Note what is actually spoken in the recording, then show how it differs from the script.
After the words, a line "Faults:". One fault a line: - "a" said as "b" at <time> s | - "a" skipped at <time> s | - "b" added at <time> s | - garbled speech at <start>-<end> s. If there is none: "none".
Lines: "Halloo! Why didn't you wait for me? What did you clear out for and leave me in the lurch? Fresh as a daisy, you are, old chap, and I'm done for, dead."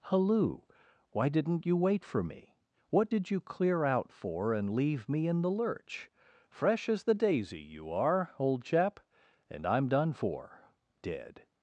"Halloo! Why didn't you wait for me? What did you clear out for and leave me in the lurch? Fresh as the daisy, you are, old chap, and I'm done for, dead."
Faults:
- "a" said as "the" at 7.0 s